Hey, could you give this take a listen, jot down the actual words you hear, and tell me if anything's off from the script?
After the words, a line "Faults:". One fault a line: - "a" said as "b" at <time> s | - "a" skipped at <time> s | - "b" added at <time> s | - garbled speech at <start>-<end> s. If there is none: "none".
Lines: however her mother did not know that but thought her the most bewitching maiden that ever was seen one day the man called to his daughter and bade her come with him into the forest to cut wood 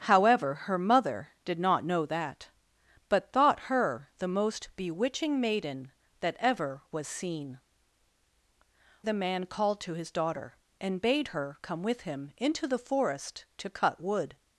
however her mother did not know that but thought her the most bewitching maiden that ever was seen the man called to his daughter and bade her come with him into the forest to cut wood
Faults:
- "one day" skipped at 7.6 s